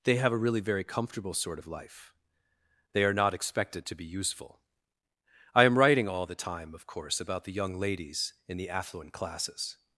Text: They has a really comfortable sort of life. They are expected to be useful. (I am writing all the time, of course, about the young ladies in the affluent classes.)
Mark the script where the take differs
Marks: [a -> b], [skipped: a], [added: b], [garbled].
They [has -> have] a really [added: very] comfortable sort of life. They are [added: not] expected to be useful. (I am writing all the time, of course, about the young ladies in the affluent classes.)